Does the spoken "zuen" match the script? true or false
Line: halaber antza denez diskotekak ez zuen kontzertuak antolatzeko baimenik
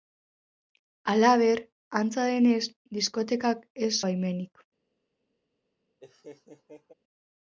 false